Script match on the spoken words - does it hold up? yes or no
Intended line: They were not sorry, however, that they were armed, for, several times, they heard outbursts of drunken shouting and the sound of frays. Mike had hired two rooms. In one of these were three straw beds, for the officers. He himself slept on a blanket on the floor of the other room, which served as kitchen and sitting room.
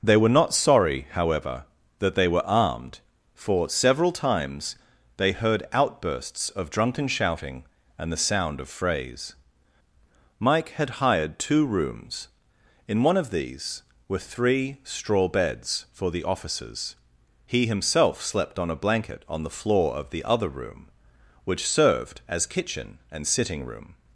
yes